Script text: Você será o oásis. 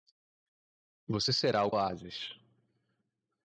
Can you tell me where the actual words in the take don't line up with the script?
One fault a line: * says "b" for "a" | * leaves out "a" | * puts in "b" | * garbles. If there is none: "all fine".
all fine